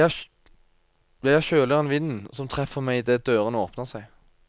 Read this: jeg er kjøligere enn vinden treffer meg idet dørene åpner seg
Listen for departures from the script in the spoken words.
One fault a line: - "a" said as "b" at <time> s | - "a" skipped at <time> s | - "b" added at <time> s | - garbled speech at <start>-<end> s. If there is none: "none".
- "som" added at 2.3 s